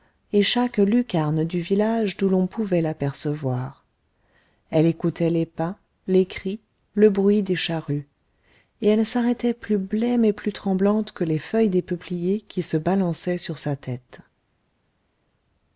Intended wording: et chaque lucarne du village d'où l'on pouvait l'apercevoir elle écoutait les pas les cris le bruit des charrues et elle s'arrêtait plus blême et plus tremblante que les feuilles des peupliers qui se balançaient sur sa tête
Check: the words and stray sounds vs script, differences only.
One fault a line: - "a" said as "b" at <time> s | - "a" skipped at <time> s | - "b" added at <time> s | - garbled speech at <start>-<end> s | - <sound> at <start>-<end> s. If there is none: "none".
none